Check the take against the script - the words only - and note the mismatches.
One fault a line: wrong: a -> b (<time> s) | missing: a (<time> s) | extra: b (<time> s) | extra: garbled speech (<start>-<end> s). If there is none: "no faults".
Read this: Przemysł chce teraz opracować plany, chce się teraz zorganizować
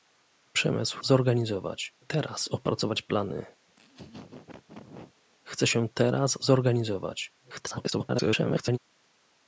wrong: chce -> zorganizować (1.0 s)
extra: garbled speech (7.4-8.8 s)